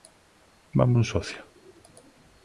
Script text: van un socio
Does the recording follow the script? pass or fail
pass